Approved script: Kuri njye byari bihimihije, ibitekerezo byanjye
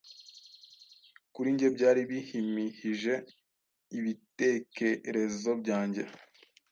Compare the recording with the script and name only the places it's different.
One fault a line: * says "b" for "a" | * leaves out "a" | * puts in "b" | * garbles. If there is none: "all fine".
all fine